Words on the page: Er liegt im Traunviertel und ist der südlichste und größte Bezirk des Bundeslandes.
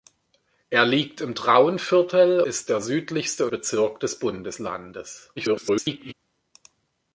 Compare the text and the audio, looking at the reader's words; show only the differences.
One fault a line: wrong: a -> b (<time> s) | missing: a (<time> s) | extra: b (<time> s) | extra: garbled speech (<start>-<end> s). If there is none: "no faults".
missing: und (2.4 s)
missing: und größte (3.5 s)
extra: garbled speech (5.4-6.1 s)